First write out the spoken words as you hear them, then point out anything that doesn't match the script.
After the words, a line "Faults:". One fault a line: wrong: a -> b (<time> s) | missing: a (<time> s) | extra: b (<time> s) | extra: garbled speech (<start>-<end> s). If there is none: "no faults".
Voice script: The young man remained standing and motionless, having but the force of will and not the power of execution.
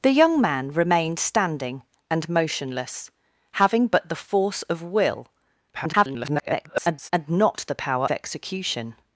The young man remained standing and motionless, having but the force of will [garbled] and not the power execution.
Faults:
extra: garbled speech (5.7-7.1 s)
missing: of (8.1 s)